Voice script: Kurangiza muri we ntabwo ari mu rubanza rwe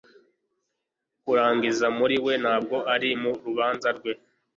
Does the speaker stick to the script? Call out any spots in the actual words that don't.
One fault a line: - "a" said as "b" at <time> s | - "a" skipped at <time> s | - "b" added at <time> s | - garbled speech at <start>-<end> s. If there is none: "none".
none